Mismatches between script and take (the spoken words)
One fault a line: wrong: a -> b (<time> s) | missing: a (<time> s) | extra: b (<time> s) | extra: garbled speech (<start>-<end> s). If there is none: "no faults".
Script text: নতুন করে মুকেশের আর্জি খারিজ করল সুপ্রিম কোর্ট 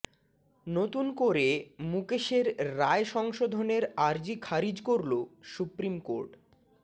extra: রায় সংশোধনের (2.8 s)